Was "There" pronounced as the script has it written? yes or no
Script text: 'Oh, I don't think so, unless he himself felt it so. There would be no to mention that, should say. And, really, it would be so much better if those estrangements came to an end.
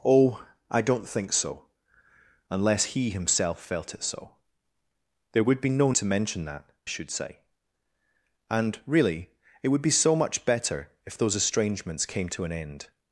yes